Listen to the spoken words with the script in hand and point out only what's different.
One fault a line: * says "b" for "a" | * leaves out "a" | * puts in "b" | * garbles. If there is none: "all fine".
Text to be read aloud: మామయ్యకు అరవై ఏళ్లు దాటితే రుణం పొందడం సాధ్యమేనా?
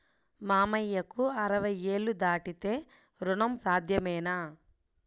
* leaves out "పొందడం"